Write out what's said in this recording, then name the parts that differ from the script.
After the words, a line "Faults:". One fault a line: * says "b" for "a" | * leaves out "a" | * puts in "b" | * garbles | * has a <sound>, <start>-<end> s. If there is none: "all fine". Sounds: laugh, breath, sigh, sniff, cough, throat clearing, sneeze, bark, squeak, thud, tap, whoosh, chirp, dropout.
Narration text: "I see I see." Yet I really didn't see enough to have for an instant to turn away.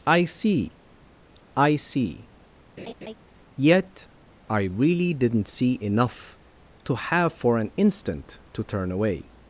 "I see I see." Yet I really didn't see enough to have for an instant to turn away.
Faults:
* has a laugh, 2.8-3.1 s